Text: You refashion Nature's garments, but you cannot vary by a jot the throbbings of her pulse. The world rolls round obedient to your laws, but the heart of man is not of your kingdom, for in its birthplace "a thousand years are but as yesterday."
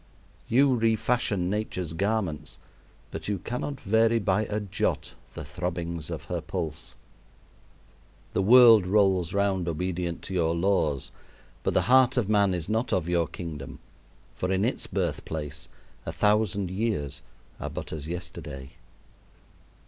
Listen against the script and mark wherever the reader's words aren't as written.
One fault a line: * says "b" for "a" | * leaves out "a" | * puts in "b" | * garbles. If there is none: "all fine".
all fine